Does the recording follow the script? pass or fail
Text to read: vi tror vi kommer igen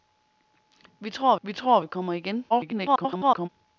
fail